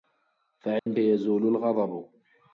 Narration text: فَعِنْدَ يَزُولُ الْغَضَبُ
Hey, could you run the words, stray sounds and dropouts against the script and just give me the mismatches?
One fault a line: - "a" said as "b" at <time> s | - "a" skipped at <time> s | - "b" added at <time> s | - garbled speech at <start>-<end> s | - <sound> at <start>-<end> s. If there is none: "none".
- dropout at 0.8-0.9 s